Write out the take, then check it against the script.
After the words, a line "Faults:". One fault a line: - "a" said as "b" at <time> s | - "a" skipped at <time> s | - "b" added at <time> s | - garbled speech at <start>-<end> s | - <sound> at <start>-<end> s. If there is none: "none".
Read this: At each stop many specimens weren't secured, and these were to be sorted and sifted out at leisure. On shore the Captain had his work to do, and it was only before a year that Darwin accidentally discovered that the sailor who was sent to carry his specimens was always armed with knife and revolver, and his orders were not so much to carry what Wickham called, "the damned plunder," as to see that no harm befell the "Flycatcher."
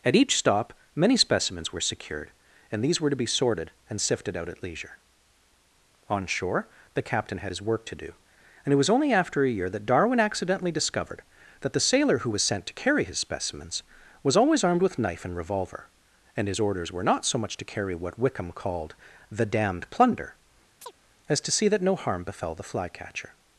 At each stop many specimens were secured, and these were to be sorted and sifted out at leisure. On shore the Captain had his work to do, and it was only after a year that Darwin accidentally discovered that the sailor who was sent to carry his specimens was always armed with knife and revolver, and his orders were not so much to carry what Wickham called, "the damned plunder," as to see that no harm befell the "Flycatcher."
Faults:
- "weren't" said as "were" at 1.7 s
- "before" said as "after" at 9.1 s
- chirp at 20.8-20.9 s